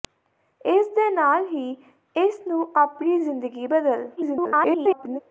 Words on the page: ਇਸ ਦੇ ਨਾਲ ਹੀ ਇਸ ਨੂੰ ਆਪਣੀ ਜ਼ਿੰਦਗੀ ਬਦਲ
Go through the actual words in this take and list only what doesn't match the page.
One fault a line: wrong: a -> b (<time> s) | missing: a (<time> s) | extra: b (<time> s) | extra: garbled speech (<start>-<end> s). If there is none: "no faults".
extra: garbled speech (4.2-5.2 s)